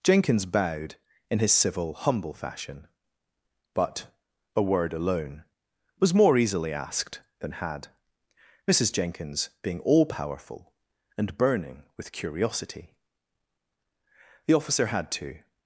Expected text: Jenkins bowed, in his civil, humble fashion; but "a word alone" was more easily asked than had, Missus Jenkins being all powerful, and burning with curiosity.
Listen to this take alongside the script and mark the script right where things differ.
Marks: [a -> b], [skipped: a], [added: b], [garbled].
Jenkins bowed, in his civil, humble fashion; but "a word alone" was more easily asked than had, Missus Jenkins being all powerful, and burning with curiosity. [added: The officer had to]